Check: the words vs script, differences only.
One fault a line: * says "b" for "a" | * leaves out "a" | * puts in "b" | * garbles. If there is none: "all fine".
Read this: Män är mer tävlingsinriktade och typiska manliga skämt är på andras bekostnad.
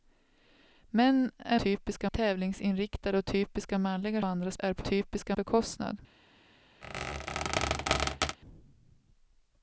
* says "typiska" for "mer"
* says "andras" for "skämt"
* says "typiska" for "andras"